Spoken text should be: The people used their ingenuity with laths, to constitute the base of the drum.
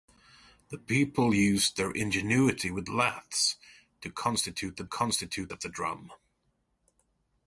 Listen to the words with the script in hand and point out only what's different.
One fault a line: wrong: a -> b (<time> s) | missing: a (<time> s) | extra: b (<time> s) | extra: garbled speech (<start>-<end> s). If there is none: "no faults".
wrong: base -> constitute (4.8 s)